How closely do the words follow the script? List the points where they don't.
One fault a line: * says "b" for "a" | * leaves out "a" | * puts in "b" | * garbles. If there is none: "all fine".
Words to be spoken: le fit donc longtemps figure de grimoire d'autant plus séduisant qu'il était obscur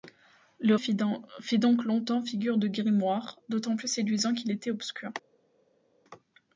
all fine